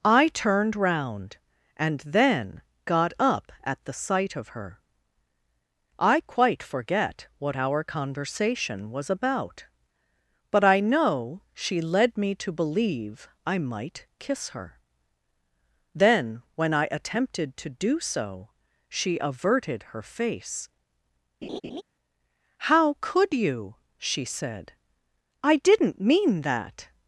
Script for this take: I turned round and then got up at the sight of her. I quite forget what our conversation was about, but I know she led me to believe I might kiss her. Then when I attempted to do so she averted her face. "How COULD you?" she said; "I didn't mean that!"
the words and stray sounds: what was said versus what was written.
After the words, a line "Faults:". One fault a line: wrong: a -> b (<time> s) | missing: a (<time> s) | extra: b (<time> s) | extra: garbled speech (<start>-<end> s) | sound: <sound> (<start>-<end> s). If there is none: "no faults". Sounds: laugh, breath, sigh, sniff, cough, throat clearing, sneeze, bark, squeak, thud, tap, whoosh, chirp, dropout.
I turned round and then got up at the sight of her. I quite forget what our conversation was about, but I know she led me to believe I might kiss her. Then when I attempted to do so she averted her face. "How COULD you?" she said; "I didn't mean that!"
Faults:
sound: laugh (21.4-21.8 s)